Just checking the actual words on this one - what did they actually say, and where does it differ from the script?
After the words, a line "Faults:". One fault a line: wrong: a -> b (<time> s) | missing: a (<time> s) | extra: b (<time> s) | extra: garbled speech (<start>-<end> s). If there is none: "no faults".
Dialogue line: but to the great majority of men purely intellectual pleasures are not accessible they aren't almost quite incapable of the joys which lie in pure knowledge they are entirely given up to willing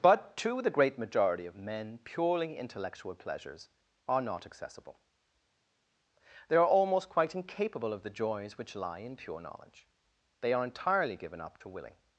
but to the great majority of men purely intellectual pleasures are not accessible they are almost quite incapable of the joys which lie in pure knowledge they are entirely given up to willing
Faults:
wrong: aren't -> are (6.5 s)